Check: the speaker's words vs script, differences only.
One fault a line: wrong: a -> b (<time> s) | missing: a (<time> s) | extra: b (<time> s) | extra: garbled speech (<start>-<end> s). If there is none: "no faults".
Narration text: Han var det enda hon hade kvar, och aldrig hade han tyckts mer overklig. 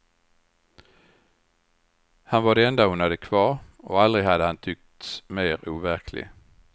no faults